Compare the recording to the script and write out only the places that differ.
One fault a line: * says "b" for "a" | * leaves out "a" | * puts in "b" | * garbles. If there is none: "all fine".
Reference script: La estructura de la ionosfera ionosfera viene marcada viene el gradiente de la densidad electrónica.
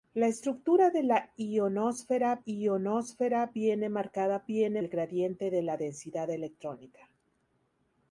all fine